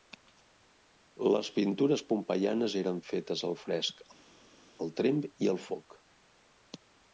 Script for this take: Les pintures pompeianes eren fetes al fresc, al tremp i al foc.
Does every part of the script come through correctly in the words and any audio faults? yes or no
yes